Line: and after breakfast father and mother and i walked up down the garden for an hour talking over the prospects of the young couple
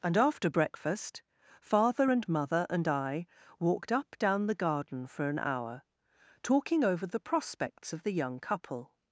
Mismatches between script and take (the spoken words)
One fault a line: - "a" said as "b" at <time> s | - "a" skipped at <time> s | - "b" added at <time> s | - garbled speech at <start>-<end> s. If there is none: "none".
none